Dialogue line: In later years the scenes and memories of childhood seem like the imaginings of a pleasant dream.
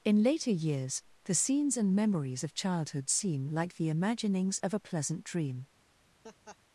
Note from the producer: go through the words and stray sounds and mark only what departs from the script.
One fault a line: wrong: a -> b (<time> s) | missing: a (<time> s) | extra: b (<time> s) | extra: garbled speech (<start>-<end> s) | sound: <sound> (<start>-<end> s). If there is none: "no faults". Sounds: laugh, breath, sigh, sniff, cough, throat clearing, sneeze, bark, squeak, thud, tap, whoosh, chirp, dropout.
sound: laugh (6.2-6.6 s)